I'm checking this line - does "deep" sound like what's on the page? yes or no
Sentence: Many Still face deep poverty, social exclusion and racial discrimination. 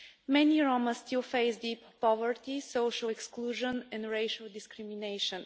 yes